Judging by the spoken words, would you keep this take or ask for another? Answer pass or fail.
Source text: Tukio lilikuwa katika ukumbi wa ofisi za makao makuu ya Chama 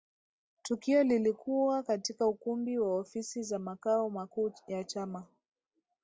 pass